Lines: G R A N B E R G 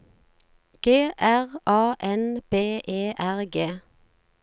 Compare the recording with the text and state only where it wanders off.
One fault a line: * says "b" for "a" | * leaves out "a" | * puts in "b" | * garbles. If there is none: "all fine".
all fine